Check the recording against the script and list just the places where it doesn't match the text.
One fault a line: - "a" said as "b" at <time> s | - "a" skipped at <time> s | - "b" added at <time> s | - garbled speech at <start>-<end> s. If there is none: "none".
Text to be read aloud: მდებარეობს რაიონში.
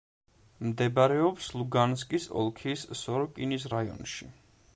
- "ლუგანსკის ოლქის სოროკინის" added at 1.6 s